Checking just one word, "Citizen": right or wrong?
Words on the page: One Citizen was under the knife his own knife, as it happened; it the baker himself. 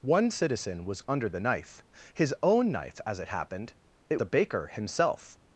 right